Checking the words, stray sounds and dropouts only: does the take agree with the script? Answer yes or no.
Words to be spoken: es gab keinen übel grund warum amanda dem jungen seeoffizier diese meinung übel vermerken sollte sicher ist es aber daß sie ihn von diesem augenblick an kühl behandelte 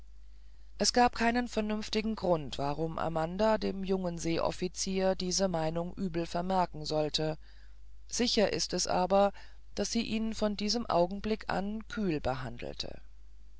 no